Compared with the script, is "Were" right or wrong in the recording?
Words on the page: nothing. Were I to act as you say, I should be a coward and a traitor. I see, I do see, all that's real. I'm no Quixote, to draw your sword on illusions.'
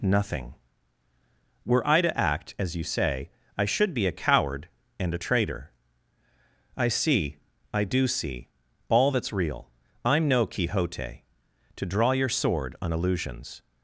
right